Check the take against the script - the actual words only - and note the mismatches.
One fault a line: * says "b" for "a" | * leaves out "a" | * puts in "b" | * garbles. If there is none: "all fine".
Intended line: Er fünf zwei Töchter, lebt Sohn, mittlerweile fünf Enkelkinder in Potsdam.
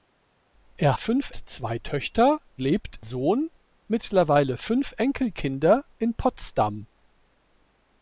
all fine